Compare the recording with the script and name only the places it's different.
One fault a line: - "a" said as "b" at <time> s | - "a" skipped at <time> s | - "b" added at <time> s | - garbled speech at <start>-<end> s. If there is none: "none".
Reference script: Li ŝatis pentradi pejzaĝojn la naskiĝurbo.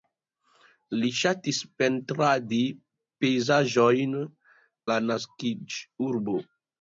none